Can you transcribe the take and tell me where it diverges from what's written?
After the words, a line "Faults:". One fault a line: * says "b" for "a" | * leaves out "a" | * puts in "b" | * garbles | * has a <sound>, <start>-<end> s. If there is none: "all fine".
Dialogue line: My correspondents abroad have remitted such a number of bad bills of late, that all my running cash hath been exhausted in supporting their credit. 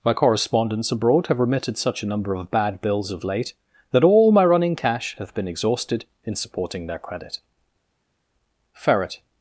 My correspondents abroad have remitted such a number of bad bills of late, that all my running cash hath been exhausted in supporting their credit. Ferret
Faults:
* puts in "Ferret"